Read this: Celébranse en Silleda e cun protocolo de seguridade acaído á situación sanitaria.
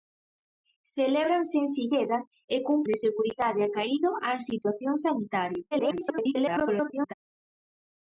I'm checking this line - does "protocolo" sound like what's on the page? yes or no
no